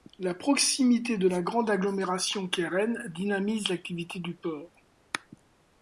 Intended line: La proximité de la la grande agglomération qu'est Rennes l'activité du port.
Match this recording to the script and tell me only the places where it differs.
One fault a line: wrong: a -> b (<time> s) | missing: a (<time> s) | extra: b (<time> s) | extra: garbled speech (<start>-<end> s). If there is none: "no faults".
missing: la (1.4 s)
extra: dynamise (3.1 s)